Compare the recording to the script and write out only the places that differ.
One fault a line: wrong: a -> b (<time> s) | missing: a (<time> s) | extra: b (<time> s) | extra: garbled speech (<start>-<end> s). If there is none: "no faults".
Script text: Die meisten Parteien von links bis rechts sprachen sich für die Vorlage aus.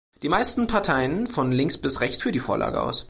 missing: sprachen sich (2.2 s)